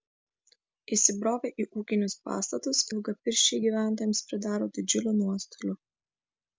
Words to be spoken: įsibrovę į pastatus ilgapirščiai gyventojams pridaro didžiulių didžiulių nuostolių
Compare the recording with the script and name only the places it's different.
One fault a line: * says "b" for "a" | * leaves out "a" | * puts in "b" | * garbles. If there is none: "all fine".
* puts in "ūkinius"
* leaves out "didžiulių"